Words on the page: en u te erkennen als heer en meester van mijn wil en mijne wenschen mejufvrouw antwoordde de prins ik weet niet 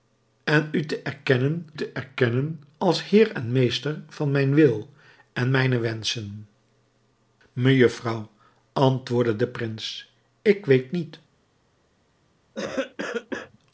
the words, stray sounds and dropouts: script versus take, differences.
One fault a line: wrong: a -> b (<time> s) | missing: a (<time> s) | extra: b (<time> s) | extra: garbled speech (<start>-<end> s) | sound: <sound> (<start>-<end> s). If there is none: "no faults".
extra: te erkennen (1.7 s)
sound: cough (12.5-13.6 s)